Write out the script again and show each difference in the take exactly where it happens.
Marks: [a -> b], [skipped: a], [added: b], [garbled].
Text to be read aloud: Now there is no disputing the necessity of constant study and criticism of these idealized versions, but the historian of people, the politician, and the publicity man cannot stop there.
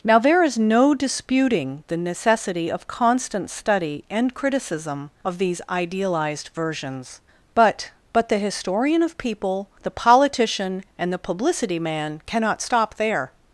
Now there is no disputing the necessity of constant study and criticism of these idealized versions, but [added: but] the historian of people, the politician, and the publicity man cannot stop there.